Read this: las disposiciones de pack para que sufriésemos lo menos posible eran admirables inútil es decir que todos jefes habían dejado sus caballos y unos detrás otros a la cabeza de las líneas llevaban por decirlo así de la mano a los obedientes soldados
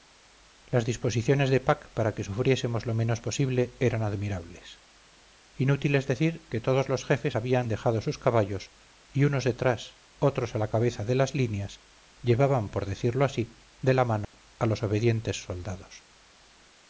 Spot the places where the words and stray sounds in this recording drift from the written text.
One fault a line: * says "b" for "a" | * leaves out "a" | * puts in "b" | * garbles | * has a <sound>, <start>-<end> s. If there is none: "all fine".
* puts in "los"
* has a dropout, 14.2-14.3 s